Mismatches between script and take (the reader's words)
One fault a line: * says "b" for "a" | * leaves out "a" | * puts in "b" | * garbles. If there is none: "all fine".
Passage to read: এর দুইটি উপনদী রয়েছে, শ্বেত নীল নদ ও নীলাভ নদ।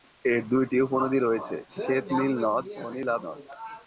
all fine